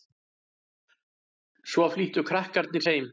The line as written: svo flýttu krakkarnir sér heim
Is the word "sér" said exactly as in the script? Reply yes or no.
no